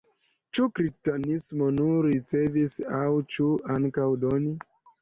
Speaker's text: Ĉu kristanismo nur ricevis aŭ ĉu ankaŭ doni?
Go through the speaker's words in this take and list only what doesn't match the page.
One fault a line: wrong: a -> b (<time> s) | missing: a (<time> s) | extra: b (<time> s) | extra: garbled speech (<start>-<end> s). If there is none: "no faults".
no faults